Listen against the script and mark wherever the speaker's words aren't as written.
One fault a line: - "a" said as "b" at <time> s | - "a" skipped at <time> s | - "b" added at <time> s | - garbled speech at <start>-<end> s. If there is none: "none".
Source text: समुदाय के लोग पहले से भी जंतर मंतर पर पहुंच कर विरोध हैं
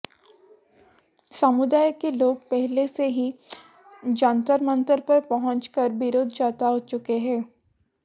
- "भी" said as "ही" at 3.1 s
- "जता चुके" added at 6.3 s